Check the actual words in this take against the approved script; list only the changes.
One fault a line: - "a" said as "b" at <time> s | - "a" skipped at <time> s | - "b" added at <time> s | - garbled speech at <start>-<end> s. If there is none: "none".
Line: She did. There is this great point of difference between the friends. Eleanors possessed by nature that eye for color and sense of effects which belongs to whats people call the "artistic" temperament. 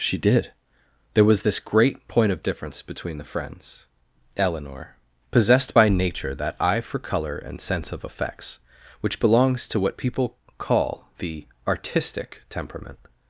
- "is" said as "was" at 1.2 s
- "Eleanors" said as "Eleanor" at 4.3 s
- "whats" said as "what" at 9.8 s